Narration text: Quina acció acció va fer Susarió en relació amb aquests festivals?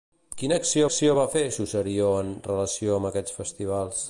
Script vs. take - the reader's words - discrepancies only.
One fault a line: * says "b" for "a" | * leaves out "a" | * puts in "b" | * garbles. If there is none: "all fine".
all fine